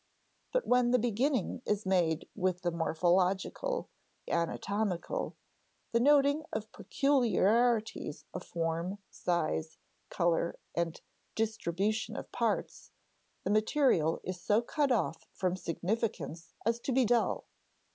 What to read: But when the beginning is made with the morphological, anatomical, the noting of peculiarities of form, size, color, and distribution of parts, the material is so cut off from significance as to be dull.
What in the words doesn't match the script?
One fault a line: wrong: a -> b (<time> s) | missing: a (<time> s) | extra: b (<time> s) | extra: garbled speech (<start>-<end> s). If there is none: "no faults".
no faults